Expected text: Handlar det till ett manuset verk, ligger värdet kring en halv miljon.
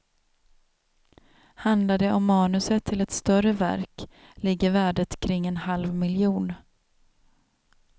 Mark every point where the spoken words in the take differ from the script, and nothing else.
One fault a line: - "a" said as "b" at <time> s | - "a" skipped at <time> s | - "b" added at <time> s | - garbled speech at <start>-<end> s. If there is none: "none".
- "om manuset" added at 2.1 s
- "manuset" said as "större" at 3.1 s